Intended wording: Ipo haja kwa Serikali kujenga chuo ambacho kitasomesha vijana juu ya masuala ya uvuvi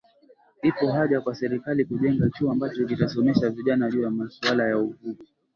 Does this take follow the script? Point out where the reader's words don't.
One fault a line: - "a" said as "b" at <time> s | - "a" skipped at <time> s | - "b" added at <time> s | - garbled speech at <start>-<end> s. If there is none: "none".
none